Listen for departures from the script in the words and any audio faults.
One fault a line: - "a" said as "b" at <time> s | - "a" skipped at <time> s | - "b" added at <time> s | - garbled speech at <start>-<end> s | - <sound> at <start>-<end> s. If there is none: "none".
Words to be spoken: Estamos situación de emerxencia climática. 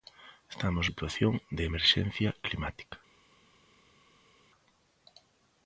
none